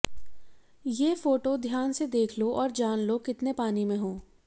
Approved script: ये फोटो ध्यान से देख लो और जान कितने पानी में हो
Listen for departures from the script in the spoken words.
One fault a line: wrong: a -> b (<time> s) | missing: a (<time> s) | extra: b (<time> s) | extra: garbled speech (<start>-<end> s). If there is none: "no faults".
extra: लो (3.0 s)